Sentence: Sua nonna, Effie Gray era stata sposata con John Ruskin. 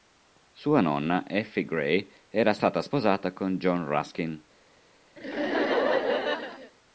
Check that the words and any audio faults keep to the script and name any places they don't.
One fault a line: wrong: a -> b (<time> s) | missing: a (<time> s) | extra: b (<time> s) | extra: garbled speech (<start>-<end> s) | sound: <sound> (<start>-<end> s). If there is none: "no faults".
sound: laugh (5.2-6.7 s)